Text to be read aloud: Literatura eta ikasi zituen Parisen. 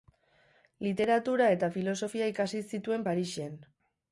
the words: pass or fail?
fail